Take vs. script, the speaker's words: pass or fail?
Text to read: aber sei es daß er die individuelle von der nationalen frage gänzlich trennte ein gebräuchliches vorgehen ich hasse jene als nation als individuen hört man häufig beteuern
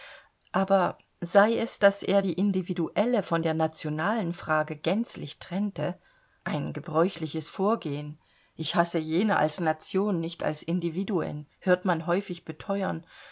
fail